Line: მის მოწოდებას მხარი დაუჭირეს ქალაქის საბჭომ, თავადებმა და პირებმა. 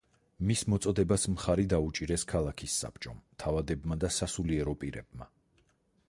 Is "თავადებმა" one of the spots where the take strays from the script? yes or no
no